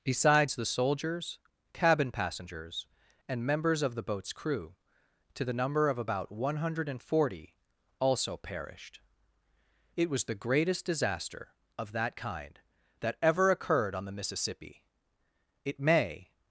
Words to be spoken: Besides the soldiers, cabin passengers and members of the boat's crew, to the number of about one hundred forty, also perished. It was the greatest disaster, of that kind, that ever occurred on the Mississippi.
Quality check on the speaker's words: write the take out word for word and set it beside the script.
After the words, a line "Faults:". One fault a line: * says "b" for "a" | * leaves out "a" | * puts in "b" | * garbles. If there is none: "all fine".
Besides the soldiers, cabin passengers and members of the boat's crew, to the number of about one hundred forty, also perished. It was the greatest disaster, of that kind, that ever occurred on the Mississippi. It may
Faults:
* puts in "It may"